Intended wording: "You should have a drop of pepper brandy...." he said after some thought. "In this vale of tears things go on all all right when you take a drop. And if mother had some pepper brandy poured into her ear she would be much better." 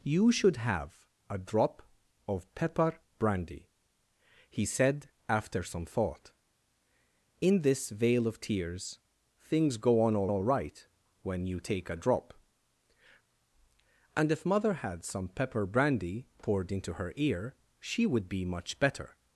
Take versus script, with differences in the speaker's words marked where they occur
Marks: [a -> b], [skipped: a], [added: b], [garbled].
"You should have a drop of pepper brandy...." he said after some thought. "In this vale of tears things go on all all right when you take a drop. And if mother had some pepper brandy poured into her ear she would be much better."